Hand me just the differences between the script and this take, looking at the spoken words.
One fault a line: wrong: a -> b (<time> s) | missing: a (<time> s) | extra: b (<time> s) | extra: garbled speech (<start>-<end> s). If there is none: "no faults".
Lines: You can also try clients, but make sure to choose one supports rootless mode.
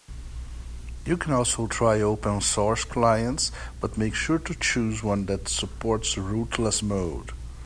extra: open source (2.0 s)
extra: that (5.3 s)